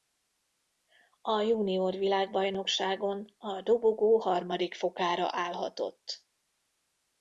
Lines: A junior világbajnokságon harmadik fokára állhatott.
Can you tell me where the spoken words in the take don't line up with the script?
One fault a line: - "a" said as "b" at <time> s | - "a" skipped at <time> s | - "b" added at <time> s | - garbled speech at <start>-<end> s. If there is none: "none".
- "a dobogó" added at 3.4 s